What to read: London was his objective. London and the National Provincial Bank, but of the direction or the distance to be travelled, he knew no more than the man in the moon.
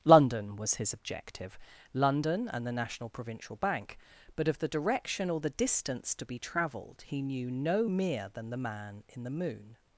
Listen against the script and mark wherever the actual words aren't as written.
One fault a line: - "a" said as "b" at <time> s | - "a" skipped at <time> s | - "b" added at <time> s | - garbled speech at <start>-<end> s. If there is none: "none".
- "more" said as "mere" at 7.9 s